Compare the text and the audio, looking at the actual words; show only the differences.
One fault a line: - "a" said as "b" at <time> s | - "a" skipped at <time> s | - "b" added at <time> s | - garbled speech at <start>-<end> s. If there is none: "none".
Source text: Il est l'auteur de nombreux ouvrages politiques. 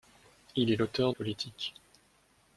- "de nombreux ouvrages" skipped at 1.1 s